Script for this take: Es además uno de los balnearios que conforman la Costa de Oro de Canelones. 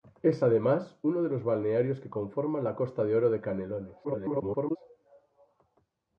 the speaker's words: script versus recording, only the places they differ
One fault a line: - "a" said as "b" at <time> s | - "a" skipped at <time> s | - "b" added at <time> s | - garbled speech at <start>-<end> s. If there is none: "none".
- garbled speech at 4.0-4.8 s